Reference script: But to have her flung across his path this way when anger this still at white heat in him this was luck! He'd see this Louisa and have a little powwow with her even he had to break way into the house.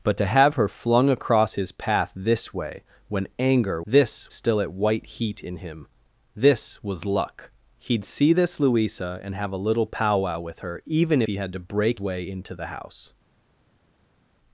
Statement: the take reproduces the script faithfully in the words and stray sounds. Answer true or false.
true